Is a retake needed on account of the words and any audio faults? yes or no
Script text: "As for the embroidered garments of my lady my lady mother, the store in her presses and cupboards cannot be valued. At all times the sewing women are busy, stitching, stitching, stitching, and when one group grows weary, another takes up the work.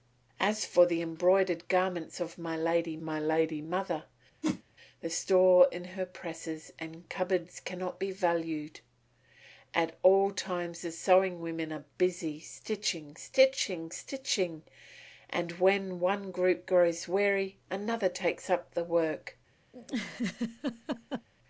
yes